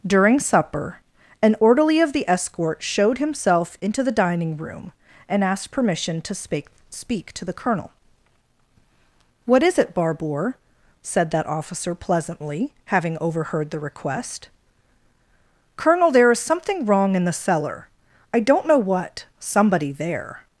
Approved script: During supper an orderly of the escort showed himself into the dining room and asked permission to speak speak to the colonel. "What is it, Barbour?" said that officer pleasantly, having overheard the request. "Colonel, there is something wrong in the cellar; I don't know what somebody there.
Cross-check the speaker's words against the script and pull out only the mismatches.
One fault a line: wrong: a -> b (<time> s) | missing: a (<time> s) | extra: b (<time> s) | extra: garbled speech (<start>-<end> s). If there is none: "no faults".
no faults